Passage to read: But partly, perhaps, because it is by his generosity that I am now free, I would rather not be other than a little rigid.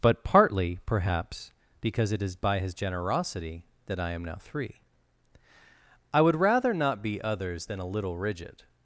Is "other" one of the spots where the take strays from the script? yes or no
yes